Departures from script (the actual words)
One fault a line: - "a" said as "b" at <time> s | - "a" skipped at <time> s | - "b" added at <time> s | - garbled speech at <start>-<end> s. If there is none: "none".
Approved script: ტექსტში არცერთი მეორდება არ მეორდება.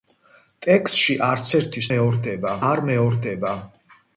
none